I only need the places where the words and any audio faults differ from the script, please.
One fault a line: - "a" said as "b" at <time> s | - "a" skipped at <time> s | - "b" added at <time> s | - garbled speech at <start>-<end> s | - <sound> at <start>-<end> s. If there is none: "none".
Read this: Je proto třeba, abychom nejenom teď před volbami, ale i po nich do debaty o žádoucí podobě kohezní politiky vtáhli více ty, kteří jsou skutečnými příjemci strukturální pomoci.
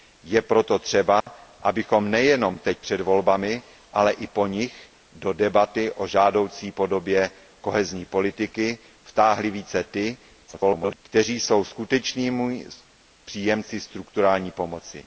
- dropout at 1.2-1.3 s
- garbled speech at 10.5-11.0 s